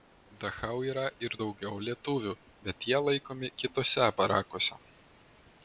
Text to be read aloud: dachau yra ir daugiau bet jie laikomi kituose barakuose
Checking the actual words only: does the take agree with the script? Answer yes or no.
no